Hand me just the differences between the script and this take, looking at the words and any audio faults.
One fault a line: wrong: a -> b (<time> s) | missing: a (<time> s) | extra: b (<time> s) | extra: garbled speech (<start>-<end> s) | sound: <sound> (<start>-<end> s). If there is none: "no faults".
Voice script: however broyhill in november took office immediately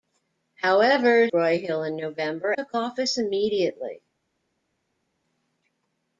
no faults